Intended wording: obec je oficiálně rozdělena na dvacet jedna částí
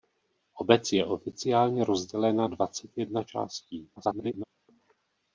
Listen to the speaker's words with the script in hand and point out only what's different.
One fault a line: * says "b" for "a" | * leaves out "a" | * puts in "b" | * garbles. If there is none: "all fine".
* leaves out "na"
* garbles